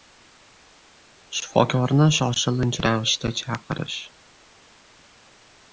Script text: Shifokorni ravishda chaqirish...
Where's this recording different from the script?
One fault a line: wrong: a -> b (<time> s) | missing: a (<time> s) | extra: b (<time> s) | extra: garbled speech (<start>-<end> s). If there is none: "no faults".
extra: shoshilinch (2.2 s)